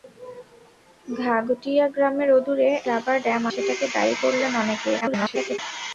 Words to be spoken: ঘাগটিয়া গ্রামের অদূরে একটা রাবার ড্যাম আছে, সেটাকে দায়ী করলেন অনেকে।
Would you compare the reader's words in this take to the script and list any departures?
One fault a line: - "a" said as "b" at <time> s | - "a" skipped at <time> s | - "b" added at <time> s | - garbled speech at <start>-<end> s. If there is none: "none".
- "একটা" skipped at 2.7 s
- "আছে" skipped at 3.4 s
- garbled speech at 5.0-5.6 s